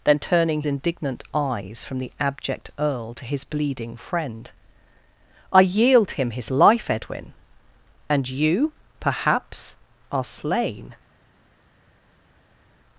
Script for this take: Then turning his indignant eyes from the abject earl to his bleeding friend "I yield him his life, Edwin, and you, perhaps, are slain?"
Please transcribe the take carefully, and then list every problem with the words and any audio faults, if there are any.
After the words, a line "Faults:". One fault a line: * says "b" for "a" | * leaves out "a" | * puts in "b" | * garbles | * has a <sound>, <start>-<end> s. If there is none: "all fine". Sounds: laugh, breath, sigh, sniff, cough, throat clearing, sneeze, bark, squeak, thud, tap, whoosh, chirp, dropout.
Then turning indignant eyes from the abject earl to his bleeding friend "I yield him his life, Edwin, and you, perhaps, are slain?"
Faults:
* leaves out "his"